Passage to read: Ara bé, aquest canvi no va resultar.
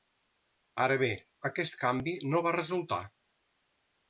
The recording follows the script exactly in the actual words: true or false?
true